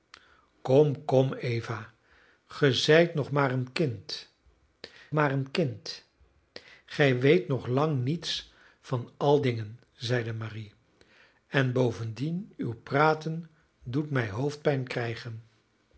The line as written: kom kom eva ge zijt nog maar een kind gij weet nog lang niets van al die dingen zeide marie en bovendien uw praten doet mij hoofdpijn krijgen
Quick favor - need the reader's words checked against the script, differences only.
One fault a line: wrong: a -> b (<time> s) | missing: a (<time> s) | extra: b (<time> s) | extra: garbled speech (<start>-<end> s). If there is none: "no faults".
extra: maar een kind (5.1 s)
missing: die (9.4 s)